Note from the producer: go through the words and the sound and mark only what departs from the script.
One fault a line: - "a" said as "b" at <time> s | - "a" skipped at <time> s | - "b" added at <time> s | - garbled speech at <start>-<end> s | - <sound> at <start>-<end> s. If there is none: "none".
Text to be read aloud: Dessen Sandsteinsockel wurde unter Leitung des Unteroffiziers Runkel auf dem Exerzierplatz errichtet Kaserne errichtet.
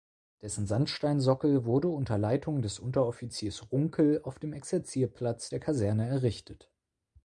- "errichtet" said as "der" at 5.5 s